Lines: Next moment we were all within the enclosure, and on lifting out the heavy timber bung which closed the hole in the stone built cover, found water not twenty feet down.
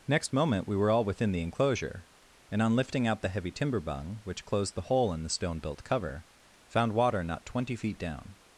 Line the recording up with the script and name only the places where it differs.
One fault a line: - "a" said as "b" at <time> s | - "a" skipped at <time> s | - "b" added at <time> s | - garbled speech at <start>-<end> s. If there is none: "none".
none